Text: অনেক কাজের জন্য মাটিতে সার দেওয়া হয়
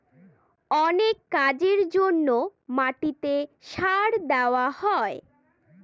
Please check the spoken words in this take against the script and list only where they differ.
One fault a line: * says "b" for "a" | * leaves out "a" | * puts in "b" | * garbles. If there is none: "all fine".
all fine